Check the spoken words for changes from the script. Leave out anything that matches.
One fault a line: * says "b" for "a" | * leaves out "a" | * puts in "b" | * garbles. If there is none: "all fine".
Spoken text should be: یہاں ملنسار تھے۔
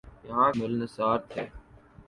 all fine